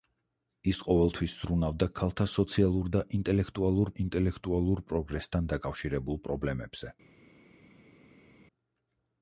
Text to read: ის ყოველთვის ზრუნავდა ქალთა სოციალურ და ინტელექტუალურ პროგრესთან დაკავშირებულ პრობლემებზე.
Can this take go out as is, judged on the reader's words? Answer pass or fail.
fail